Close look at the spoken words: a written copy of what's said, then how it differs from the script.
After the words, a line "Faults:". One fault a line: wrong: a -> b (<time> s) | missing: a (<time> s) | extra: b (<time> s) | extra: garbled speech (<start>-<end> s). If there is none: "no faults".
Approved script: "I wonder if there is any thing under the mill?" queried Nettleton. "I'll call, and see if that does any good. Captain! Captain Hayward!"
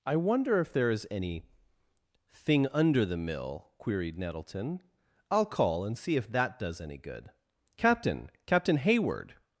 "I wonder if there is any thing under the mill?" queried Nettleton. "I'll call, and see if that does any good. Captain! Captain Hayward!"
Faults:
no faults